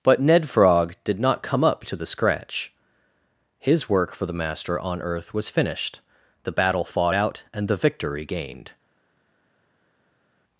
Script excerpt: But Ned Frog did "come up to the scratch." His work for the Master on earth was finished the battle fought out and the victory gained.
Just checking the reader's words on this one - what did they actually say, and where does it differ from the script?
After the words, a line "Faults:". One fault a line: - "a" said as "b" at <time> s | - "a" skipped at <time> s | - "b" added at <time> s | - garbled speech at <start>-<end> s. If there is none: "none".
But Ned Frog did not "come up to the scratch." His work for the Master on earth was finished the battle fought out and the victory gained.
Faults:
- "not" added at 1.2 s